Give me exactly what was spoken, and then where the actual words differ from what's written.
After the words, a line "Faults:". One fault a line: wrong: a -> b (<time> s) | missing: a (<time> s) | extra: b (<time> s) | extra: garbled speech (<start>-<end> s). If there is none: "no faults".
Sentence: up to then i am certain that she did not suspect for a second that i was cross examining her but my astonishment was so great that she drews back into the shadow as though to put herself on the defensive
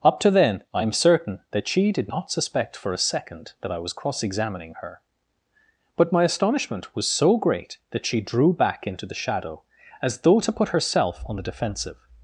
up to then i am certain that she did not suspect for a second that i was cross examining her but my astonishment was so great that she drew back into the shadow as though to put herself on the defensive
Faults:
wrong: drews -> drew (8.2 s)